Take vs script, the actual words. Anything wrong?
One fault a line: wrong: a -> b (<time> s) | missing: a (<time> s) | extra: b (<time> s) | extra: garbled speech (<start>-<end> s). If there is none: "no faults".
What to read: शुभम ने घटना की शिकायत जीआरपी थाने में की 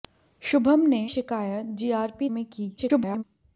missing: घटना की (1.0 s)
missing: थाने (2.3 s)
extra: garbled speech (2.8-3.2 s)